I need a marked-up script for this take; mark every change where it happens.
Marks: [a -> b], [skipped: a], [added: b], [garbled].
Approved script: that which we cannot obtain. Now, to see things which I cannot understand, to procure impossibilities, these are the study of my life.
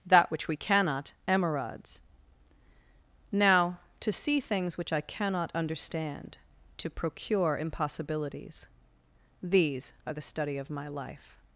that which we cannot [obtain. -> emerods] Now, to see things which I cannot understand, to procure impossibilities, these are the study of my life.